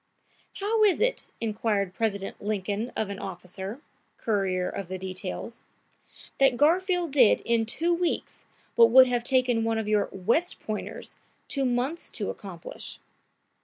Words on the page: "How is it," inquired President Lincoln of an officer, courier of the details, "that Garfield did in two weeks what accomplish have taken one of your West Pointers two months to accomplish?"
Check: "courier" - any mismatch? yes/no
no